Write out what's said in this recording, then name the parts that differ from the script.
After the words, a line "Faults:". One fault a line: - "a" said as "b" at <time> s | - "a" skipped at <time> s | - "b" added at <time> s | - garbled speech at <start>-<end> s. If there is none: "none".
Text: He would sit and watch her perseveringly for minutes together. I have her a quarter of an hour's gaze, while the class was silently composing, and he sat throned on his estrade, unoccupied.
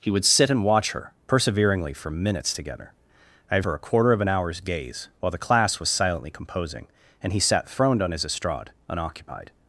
He would sit and watch her perseveringly for minutes together. I have her a quarter of an hour's gaze, while the class was silently composing, and he sat throned on his estrade, unoccupied.
Faults:
none